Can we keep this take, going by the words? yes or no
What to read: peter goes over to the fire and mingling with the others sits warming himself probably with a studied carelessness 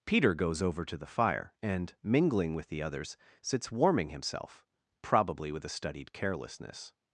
yes